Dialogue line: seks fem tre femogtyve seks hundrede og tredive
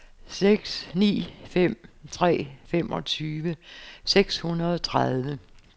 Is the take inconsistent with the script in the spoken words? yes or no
yes